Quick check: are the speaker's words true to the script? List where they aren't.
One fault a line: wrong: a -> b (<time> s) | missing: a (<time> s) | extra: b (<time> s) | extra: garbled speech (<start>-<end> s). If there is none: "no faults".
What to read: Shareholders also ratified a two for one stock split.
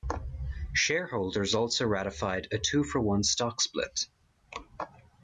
no faults